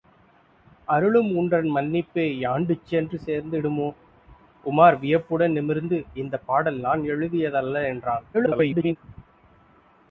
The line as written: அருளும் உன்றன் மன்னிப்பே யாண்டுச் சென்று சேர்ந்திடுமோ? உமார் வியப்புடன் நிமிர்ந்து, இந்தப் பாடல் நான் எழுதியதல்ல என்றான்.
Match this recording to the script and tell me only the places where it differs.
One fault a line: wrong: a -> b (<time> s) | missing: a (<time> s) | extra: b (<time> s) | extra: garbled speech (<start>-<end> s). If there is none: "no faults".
extra: garbled speech (8.3-9.0 s)